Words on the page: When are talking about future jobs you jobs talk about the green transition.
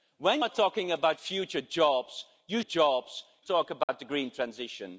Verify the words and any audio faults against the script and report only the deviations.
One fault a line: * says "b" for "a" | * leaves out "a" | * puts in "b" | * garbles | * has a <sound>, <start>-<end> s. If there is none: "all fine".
* has a dropout, 3.8-3.9 s